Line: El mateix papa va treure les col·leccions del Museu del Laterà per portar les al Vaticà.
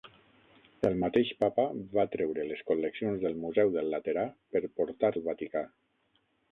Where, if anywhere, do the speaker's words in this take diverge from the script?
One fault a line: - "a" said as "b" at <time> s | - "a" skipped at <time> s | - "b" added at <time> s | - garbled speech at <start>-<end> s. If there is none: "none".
- "les" skipped at 5.1 s